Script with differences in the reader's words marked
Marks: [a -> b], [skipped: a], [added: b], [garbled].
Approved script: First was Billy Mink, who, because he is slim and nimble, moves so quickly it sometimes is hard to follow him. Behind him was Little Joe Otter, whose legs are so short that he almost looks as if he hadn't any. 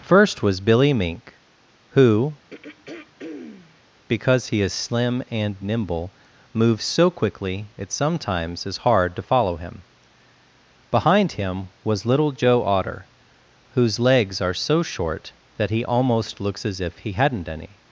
First was Billy Mink, who, because he is slim and nimble, moves so quickly it sometimes is hard to follow him. Behind him was Little Joe Otter, whose legs are so short that he almost looks as if he hadn't any.